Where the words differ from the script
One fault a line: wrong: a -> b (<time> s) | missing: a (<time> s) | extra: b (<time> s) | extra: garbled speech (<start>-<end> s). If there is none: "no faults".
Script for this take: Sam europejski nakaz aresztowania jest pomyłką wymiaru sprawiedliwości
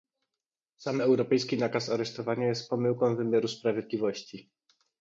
no faults